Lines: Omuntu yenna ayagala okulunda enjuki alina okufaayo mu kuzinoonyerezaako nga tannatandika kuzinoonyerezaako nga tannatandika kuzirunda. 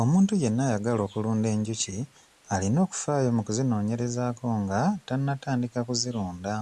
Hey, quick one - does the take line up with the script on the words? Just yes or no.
no